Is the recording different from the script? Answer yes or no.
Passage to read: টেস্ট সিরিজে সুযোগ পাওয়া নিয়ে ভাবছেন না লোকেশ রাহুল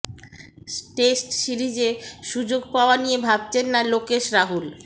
no